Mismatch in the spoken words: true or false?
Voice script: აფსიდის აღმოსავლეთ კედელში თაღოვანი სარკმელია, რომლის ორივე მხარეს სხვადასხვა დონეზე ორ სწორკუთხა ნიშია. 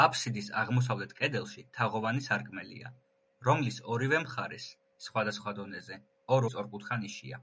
false